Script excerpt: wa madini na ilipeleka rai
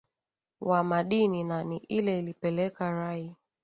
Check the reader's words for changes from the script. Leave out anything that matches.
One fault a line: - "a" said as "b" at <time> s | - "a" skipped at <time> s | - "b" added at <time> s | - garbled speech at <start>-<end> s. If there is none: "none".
- "ni ile" added at 1.6 s